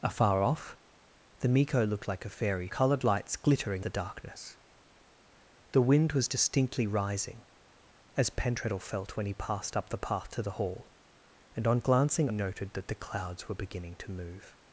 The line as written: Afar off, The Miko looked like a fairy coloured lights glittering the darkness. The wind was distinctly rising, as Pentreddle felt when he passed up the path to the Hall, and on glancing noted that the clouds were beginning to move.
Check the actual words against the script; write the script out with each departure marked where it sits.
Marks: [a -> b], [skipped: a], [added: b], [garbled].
Afar off, The Miko looked like a fairy coloured lights glittering the darkness. The wind was distinctly rising, as Pentreddle felt when he passed up the path to the Hall, and on glancing noted that the clouds were beginning to move.